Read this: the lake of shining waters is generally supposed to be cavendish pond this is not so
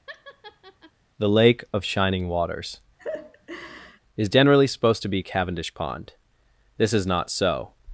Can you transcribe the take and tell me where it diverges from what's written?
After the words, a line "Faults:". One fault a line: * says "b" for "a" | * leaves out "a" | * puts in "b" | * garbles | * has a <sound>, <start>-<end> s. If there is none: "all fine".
the lake of shining waters is generally supposed to be cavendish pond this is not so
Faults:
* has a laugh, 0.1-0.9 s
* has a laugh, 3.0-4.0 s